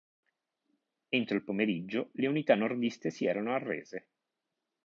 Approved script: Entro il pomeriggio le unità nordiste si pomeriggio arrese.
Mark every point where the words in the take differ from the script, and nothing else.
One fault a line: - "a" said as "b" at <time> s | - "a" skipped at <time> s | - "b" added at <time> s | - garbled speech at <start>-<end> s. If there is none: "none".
- "pomeriggio" said as "erano" at 3.3 s